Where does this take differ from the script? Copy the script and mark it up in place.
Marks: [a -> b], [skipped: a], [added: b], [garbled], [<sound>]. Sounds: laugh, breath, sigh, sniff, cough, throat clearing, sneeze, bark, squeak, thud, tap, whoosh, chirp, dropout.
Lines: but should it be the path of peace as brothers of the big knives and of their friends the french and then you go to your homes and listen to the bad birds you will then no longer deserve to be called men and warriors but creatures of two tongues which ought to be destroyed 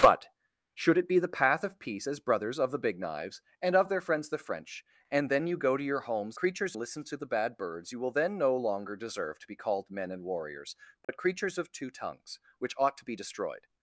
but should it be the path of peace as brothers of the big knives and of their friends the french and then you go to your homes [and -> creatures] listen to the bad birds you will then no longer deserve to be called men and warriors but [dropout] creatures of two tongues which ought to be destroyed